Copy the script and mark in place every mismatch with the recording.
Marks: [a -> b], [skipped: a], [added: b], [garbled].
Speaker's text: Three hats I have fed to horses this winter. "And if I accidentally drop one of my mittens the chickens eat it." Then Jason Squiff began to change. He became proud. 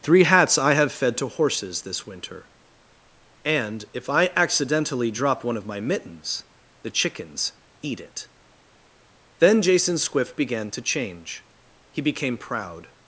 Three hats I have fed to horses this winter. "And if I accidentally drop one of my mittens the chickens eat it." Then Jason Squiff began to change. He became proud.